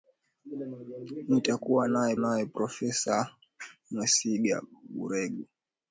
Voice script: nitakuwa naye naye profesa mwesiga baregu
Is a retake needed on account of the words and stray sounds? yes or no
no